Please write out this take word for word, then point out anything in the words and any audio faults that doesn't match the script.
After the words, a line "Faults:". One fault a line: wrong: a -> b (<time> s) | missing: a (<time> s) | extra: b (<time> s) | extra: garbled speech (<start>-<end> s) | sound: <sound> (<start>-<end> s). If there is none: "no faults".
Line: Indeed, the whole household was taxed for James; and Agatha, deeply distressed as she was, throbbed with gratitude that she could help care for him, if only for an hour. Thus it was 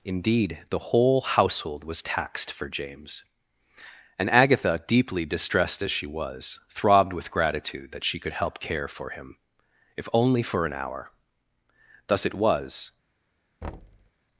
Indeed, the whole household was taxed for James; and Agatha, deeply distressed as she was, throbbed with gratitude that she could help care for him, if only for an hour. Thus it was
Faults:
sound: thud (13.6-14.1 s)